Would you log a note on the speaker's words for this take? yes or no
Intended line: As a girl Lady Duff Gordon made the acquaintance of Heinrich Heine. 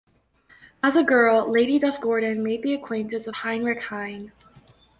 no